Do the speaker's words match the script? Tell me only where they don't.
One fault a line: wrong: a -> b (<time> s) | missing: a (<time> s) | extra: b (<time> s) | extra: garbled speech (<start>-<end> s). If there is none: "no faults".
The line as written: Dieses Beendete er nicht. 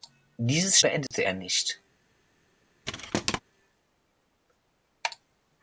no faults